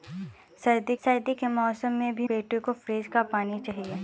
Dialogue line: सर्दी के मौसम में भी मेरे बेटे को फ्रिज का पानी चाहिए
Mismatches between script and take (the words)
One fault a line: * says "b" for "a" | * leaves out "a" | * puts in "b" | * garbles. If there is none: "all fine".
* puts in "सर्दी"
* leaves out "मेरे"